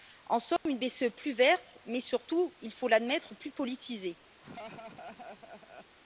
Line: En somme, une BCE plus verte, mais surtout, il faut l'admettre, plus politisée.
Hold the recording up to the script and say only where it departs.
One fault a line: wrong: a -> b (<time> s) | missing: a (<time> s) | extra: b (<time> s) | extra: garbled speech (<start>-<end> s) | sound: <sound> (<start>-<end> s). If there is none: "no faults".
sound: dropout (0.6-0.7 s)
sound: laugh (4.4-6.0 s)